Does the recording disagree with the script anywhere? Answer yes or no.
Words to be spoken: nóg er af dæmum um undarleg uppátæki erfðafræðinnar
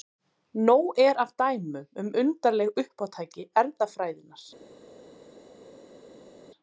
no